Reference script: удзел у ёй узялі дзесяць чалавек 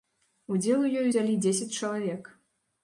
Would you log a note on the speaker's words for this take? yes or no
no